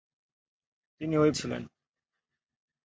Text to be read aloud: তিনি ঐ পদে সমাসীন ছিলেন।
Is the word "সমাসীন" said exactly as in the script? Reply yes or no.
no